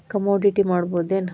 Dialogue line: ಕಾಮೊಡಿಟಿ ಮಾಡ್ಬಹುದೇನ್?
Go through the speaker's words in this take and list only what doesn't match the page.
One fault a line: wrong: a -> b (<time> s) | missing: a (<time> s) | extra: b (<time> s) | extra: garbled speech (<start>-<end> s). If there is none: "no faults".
no faults